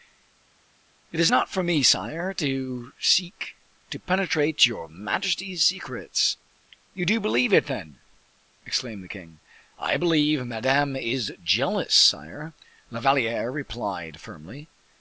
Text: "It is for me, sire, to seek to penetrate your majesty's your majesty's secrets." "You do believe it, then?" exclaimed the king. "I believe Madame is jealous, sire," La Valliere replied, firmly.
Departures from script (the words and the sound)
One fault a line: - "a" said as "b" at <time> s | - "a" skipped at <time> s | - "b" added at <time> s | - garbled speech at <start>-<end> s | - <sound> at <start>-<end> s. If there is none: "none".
- "not" added at 1.3 s
- "your majesty's" skipped at 5.6 s